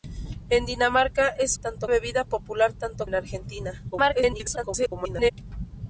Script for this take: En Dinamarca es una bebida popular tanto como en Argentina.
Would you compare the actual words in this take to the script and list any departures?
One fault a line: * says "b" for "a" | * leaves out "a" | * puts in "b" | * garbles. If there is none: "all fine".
* says "tanto" for "una"
* leaves out "como"
* garbles